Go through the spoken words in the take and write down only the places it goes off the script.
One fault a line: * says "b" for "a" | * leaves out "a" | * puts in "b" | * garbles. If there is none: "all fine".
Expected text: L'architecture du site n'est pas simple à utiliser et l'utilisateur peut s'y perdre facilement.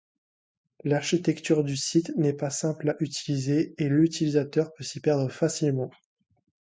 all fine